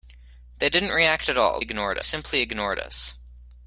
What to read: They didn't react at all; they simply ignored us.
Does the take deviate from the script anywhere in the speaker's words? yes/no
yes